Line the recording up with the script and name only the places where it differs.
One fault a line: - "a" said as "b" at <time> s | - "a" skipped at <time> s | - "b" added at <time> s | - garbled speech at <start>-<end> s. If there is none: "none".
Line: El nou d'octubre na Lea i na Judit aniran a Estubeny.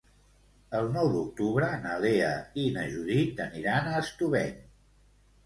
none